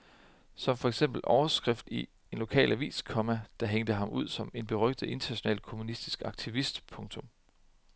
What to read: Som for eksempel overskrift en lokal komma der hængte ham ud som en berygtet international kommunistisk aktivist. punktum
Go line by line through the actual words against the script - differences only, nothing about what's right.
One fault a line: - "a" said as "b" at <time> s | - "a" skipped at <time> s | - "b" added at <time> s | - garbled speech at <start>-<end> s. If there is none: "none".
- "i" added at 1.9 s
- "avis" added at 2.7 s